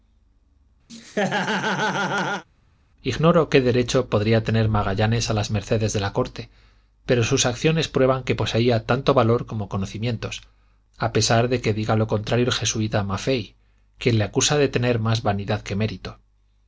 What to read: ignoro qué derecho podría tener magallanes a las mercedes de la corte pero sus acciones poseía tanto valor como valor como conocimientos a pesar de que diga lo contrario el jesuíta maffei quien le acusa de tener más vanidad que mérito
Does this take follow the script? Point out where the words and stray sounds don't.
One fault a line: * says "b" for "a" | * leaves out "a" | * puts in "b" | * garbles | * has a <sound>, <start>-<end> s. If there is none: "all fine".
* has a laugh, 0.9-2.4 s
* puts in "prueban que"
* leaves out "valor como"